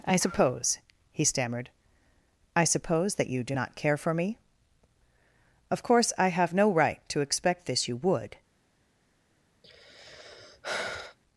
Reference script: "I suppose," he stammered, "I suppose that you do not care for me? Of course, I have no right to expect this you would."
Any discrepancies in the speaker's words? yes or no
no